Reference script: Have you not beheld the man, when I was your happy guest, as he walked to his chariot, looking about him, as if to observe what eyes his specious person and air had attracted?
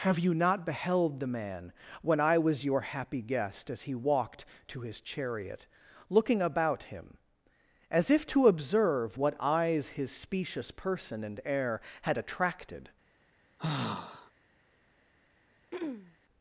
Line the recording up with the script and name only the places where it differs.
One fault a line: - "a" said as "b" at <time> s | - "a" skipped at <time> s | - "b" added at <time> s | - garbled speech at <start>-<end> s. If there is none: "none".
none